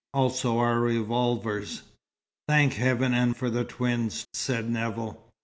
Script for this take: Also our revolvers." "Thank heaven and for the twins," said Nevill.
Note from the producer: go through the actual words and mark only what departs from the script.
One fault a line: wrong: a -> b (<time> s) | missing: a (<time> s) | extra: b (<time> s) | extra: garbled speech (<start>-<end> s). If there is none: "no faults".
no faults